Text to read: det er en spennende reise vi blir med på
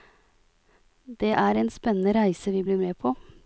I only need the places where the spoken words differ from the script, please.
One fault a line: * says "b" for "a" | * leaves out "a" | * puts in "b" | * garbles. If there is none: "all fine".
all fine